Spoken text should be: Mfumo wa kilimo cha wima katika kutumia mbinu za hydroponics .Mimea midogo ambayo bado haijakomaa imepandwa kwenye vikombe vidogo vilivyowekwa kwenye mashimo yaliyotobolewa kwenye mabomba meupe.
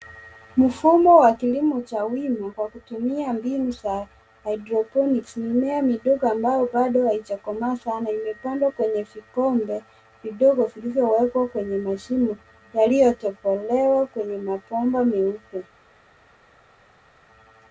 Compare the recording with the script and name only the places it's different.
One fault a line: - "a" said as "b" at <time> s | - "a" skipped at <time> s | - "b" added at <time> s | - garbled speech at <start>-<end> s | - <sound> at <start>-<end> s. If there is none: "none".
- "katika" said as "kwa" at 2.5 s
- "sana" added at 7.8 s